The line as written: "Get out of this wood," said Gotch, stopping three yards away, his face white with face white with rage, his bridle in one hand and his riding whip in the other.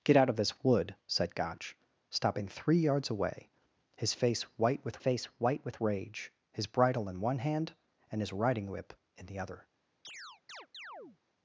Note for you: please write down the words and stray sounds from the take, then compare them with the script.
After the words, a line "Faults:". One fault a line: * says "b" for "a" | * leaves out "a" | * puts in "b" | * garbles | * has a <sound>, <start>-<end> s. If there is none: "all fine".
"Get out of this wood," said Gotch, stopping three yards away, his face white with face white with rage, his bridle in one hand and his riding whip in the other.
Faults:
* has a chirp, 10.0-11.2 s